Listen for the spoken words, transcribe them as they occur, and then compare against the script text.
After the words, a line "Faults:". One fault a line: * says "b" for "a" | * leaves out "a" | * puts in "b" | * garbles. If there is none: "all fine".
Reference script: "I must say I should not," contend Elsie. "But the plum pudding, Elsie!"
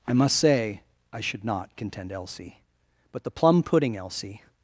"I must say I should not," contend Elsie. "But the plum pudding, Elsie!"
Faults:
all fine